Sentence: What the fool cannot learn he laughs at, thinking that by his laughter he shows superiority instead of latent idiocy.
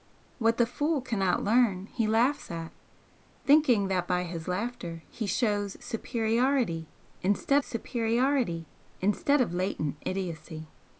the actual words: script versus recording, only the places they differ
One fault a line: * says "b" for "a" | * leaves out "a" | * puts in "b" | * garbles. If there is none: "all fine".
* puts in "superiority instead"